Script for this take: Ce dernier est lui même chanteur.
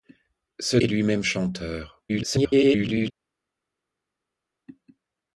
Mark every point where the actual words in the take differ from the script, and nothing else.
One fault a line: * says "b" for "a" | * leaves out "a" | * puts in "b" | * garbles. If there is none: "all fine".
* leaves out "dernier"
* garbles